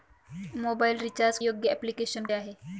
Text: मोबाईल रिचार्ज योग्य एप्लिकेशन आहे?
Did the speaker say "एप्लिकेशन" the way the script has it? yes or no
yes